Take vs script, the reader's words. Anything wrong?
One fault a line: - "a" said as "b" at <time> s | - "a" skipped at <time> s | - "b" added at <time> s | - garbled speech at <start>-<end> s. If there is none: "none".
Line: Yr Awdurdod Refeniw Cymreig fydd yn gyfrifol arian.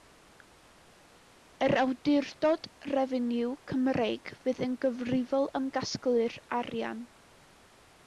- "am gasglu'r" added at 5.6 s